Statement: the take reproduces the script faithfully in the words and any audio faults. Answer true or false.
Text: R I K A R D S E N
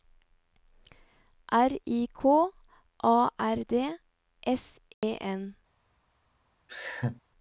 false